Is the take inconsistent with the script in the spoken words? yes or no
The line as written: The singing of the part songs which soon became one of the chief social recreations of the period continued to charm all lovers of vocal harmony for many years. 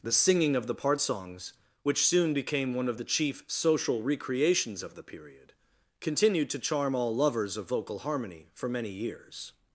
no